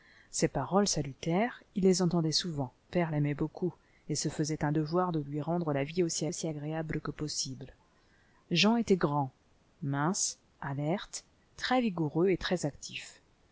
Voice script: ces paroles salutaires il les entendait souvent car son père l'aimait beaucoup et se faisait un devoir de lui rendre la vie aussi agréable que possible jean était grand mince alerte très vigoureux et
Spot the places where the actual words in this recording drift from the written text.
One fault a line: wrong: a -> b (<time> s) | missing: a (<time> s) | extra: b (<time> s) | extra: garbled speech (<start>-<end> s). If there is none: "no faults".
missing: car son (2.7 s)
extra: aussi (6.3 s)